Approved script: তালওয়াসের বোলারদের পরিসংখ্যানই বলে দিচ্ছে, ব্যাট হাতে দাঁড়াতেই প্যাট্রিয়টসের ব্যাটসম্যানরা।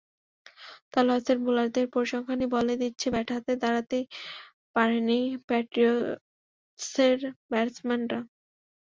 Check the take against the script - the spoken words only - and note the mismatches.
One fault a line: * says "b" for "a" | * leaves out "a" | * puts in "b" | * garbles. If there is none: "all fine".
* puts in "পারেননি"